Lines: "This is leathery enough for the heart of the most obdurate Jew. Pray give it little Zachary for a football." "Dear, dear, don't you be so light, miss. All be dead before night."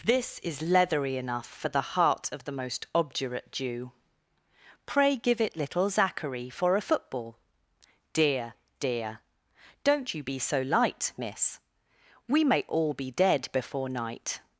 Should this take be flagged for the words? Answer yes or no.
yes